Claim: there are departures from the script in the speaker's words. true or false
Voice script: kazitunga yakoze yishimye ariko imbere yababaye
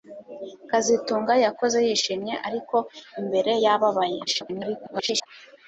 true